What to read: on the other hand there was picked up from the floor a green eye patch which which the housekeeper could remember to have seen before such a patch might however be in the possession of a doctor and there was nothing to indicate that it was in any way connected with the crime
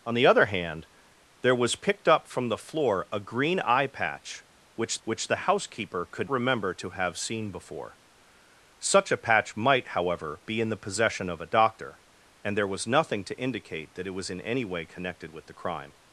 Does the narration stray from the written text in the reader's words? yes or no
no